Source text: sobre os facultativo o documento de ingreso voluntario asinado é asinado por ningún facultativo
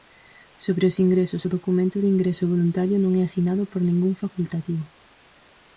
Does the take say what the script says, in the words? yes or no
no